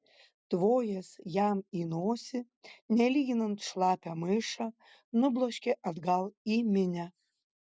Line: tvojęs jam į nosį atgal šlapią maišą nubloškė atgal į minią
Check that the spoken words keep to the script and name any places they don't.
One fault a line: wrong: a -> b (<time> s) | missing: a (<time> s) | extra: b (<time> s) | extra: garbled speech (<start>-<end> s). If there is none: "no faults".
wrong: atgal -> nelyginant (3.0 s)